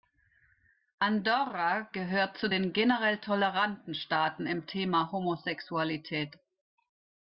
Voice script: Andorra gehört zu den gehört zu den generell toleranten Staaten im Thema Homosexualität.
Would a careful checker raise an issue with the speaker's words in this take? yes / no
yes